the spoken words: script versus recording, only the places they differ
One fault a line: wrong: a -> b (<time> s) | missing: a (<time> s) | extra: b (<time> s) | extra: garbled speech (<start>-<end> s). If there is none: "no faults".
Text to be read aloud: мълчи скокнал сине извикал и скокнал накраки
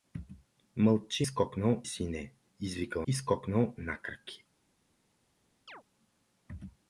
no faults